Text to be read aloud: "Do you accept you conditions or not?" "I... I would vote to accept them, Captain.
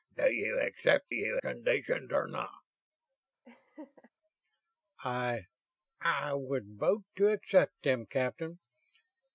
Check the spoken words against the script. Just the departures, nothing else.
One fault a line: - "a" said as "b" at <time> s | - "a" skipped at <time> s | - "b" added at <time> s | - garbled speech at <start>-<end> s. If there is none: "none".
none